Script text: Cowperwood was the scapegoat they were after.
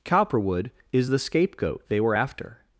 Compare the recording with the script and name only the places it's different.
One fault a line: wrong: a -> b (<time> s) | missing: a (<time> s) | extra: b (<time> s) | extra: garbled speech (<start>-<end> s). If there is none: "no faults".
wrong: was -> is (0.9 s)